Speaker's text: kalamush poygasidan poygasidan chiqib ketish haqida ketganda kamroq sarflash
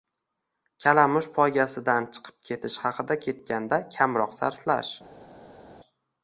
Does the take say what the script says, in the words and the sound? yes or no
no